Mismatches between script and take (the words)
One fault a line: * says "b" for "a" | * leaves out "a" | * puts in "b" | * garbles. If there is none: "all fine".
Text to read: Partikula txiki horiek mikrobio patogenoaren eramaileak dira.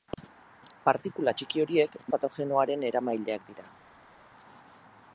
* leaves out "mikrobio"